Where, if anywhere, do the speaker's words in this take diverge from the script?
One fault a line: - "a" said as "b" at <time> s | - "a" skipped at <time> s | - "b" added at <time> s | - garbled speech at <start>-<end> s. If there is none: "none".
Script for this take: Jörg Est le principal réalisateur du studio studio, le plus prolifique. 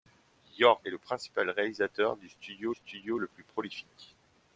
none